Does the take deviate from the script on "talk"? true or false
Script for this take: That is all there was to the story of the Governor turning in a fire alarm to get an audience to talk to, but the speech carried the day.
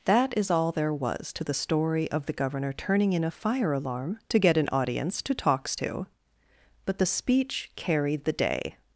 true